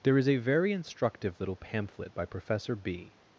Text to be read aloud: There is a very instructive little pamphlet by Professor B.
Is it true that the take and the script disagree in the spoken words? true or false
false